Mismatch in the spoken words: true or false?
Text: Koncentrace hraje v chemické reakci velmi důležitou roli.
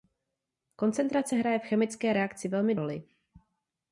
true